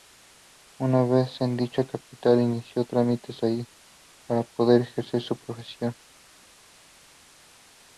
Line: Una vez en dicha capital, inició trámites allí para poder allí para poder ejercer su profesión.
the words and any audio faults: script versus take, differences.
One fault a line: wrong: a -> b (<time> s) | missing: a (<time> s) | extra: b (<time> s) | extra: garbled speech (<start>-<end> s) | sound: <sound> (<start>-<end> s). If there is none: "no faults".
missing: allí para poder (4.8 s)